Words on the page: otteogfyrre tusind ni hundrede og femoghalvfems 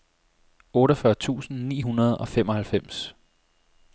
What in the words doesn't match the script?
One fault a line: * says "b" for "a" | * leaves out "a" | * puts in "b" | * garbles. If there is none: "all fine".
all fine